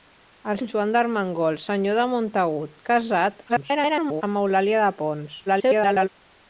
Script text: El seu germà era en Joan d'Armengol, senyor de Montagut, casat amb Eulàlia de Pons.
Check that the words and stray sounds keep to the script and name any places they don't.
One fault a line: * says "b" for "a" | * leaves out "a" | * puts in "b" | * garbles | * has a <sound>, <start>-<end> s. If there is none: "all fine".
* leaves out "seu germà era"
* garbles
* garbles